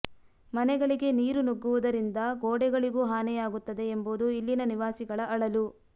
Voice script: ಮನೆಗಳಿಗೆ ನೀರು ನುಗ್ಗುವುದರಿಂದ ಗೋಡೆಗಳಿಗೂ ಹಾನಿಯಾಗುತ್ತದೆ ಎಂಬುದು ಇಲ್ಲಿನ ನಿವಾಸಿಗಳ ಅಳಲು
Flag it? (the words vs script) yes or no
no